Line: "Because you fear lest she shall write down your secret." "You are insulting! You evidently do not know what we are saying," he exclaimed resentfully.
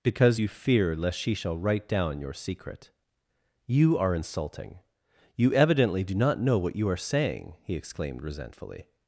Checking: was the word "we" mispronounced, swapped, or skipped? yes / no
yes